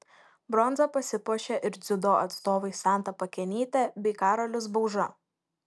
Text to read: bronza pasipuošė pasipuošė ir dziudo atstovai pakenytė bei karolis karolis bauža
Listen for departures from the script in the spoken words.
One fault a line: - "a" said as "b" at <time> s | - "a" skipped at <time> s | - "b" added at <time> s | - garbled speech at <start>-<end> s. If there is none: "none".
- "pasipuošė" skipped at 1.6 s
- "santa" added at 2.8 s
- "karolis" skipped at 4.7 s